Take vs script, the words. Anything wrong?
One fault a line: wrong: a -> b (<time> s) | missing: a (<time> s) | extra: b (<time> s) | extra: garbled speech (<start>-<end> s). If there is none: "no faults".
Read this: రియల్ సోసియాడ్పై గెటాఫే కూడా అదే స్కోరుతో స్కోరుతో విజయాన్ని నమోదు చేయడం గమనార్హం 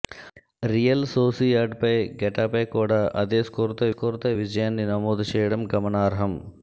no faults